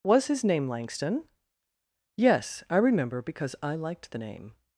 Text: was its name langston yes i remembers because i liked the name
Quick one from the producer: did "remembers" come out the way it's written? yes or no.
no